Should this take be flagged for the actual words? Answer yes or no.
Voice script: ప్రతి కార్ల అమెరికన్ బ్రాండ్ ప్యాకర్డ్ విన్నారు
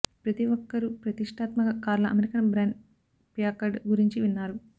yes